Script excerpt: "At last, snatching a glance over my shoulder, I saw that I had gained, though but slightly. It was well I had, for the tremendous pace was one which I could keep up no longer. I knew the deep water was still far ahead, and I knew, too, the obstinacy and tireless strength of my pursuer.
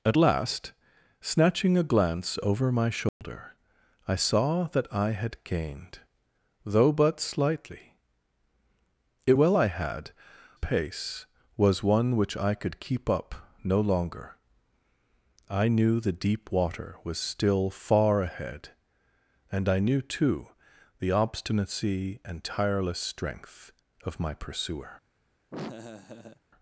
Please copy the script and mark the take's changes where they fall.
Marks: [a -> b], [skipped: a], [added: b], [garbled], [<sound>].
"At last, snatching a glance over my shoulder, [dropout] I saw that I had gained, though but slightly. It [skipped: was] well I had, [skipped: for the tremendous] pace was one which I could keep up no longer. I knew the deep water was still far ahead, and I knew, too, the obstinacy and tireless strength of my pursuer. [laugh]